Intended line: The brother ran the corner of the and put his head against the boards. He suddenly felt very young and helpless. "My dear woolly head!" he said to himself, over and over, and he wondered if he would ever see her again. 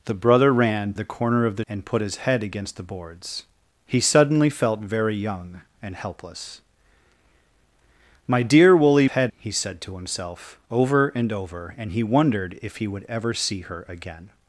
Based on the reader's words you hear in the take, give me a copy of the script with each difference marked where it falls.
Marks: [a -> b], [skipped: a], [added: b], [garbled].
The brother ran the corner of the and put his head against the boards. He suddenly felt very young and helpless. "My dear woolly head!" he said to himself, over and over, and he wondered if he would ever see her again.